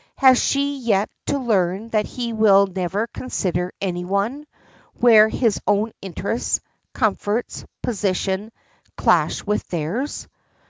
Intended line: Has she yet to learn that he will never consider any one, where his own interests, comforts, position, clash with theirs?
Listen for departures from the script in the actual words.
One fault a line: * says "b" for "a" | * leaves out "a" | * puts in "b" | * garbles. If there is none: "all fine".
all fine